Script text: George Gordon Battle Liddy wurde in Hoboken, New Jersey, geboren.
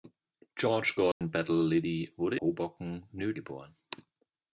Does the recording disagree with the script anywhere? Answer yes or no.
yes